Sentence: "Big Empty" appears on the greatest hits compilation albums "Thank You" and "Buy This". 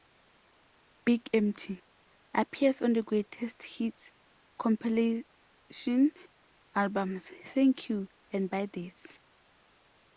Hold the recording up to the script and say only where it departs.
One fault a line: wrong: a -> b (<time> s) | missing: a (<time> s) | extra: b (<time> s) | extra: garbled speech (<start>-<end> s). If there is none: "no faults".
no faults